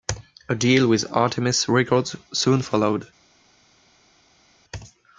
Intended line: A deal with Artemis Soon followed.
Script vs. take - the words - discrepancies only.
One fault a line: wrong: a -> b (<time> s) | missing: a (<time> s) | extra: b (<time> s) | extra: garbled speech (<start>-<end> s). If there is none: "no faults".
extra: Records (1.7 s)